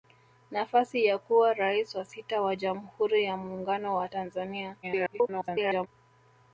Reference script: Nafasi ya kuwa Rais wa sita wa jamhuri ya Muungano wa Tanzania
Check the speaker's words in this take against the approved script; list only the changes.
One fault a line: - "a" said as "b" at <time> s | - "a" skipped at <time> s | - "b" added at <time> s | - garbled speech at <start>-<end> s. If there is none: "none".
- garbled speech at 4.8-5.9 s